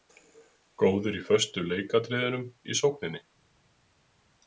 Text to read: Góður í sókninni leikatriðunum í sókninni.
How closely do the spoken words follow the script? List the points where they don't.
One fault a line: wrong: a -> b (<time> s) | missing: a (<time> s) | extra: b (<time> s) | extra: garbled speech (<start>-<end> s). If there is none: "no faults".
wrong: sókninni -> föstu (1.3 s)